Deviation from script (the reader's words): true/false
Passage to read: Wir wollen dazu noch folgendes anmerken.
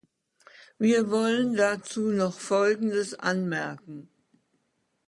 false